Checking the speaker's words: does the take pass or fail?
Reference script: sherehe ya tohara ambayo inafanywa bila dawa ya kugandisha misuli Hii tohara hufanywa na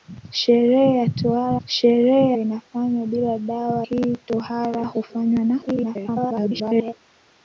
fail